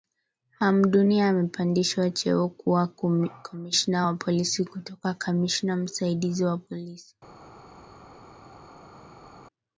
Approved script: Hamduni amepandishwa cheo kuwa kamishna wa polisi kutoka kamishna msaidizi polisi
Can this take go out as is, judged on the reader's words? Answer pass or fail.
fail